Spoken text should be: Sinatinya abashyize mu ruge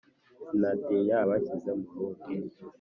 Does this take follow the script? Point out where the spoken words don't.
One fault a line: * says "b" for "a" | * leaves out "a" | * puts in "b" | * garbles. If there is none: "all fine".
all fine